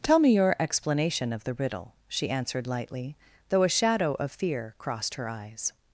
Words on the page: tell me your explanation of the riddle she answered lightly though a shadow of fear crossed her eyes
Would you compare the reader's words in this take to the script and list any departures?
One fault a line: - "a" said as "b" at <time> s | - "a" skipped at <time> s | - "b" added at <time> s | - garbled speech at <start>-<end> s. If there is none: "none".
none